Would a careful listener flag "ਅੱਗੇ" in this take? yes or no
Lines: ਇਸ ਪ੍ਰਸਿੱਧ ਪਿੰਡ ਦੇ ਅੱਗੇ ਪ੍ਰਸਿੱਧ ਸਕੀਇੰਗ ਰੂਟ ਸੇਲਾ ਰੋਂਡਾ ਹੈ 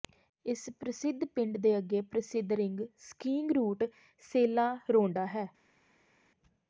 no